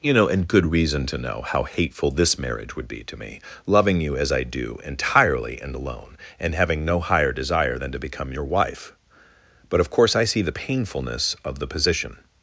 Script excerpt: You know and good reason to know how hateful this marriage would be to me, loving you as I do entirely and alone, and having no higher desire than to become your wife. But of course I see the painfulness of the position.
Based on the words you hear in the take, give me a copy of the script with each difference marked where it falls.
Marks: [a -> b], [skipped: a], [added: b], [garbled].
You know and good reason to know how hateful this marriage would be to me, loving you as I do entirely and alone, and having no higher desire than to become your wife. But of course I see the painfulness of the position.